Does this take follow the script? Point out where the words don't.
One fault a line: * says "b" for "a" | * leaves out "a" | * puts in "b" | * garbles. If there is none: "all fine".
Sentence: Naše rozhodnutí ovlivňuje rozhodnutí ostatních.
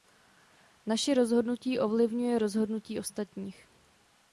all fine